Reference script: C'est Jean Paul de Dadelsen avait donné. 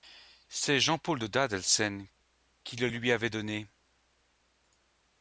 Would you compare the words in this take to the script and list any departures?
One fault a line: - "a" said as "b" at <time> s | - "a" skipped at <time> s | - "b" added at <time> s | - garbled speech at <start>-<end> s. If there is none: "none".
- "qui le lui" added at 2.6 s